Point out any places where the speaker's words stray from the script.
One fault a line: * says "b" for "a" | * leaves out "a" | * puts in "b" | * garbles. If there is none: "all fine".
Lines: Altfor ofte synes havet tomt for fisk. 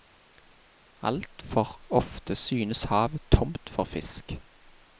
all fine